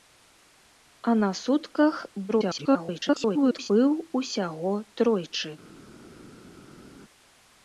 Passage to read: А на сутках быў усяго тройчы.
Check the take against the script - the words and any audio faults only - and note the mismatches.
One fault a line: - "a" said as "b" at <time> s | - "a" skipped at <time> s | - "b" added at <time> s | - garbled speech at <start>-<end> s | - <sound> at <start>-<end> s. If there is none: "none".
- garbled speech at 2.3-3.7 s